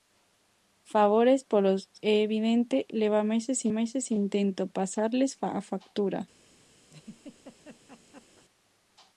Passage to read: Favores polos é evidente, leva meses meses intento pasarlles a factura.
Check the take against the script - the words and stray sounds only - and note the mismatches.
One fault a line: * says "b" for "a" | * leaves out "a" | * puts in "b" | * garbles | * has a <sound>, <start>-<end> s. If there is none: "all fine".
* has a laugh, 6.9-8.4 s